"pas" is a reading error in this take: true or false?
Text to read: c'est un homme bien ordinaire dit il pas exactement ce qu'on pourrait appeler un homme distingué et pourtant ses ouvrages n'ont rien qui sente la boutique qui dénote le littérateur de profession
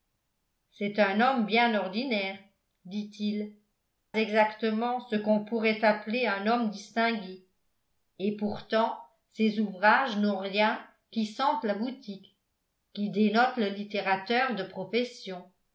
true